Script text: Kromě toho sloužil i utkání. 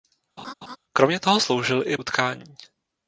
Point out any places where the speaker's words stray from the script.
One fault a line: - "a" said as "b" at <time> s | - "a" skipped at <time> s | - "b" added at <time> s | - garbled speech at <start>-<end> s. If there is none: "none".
none